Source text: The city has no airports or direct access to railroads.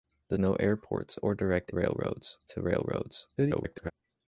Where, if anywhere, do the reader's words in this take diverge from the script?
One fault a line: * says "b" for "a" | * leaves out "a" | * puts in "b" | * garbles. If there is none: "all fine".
* leaves out "city has"
* says "railroads" for "access"
* garbles